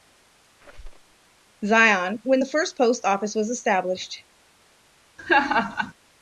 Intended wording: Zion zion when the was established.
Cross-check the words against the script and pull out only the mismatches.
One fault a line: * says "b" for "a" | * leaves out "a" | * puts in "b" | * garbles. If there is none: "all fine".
* leaves out "zion"
* puts in "first post office"